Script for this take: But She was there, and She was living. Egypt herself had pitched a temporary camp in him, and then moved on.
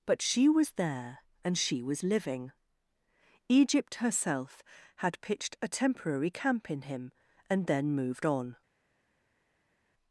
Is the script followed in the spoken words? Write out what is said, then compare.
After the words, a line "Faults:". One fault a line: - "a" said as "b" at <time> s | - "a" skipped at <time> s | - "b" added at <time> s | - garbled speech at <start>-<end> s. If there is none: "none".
But She was there, and She was living. Egypt herself had pitched a temporary camp in him, and then moved on.
Faults:
none